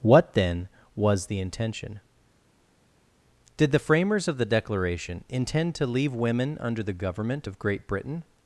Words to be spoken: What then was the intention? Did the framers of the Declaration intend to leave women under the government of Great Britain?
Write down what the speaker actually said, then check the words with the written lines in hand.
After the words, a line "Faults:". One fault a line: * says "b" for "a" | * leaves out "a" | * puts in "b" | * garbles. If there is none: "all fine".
What then was the intention? Did the framers of the Declaration intend to leave women under the government of Great Britain?
Faults:
all fine